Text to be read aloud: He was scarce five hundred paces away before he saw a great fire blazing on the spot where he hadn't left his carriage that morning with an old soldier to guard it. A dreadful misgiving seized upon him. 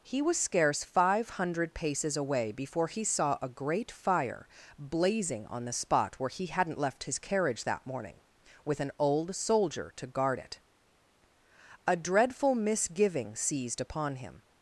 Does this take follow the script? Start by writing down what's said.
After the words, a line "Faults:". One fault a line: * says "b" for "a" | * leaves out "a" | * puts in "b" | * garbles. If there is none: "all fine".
He was scarce five hundred paces away before he saw a great fire blazing on the spot where he hadn't left his carriage that morning with an old soldier to guard it. A dreadful misgiving seized upon him.
Faults:
all fine